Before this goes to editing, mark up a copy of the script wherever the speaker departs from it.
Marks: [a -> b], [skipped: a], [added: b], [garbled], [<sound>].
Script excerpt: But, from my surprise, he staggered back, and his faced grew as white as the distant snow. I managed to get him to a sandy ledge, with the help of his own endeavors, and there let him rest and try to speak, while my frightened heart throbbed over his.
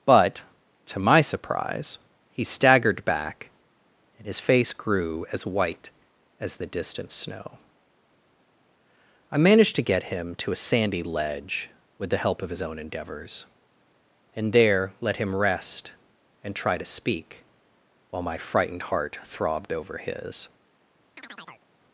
But, [from -> to] my surprise, he staggered back, and his [faced -> face] grew as white as the distant snow. I managed to get him to a sandy ledge, with the help of his own endeavors, and there let him rest and try to speak, while my frightened heart throbbed over his. [chirp]